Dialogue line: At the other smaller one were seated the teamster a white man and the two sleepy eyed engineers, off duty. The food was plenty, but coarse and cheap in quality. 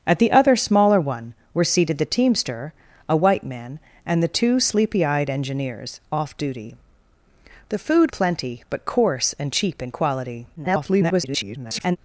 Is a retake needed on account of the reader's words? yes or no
yes